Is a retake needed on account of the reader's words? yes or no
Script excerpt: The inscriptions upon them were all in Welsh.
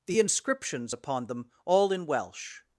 yes